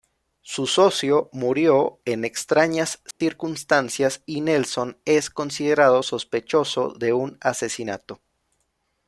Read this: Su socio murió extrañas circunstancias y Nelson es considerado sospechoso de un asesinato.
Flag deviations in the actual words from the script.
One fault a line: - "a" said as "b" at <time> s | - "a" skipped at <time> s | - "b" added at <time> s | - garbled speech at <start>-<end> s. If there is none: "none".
- "en" added at 2.0 s